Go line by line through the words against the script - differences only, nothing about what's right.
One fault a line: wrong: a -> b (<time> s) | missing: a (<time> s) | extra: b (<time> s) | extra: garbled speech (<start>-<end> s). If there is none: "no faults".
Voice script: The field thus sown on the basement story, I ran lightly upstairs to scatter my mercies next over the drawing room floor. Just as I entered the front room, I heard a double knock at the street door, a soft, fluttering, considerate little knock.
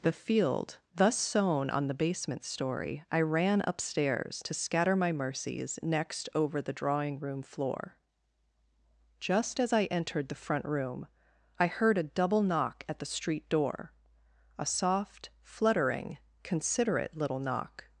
missing: lightly (3.6 s)